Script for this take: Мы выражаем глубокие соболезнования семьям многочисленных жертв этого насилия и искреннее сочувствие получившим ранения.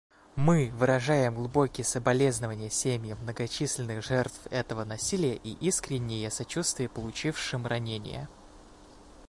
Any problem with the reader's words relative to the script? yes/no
no